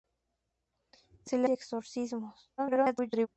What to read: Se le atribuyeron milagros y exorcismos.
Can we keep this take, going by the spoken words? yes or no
no